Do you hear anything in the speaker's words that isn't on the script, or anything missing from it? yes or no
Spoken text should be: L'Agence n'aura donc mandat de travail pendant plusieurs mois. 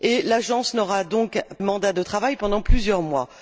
no